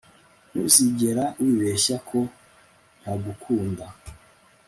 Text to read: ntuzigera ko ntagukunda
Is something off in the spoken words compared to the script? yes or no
yes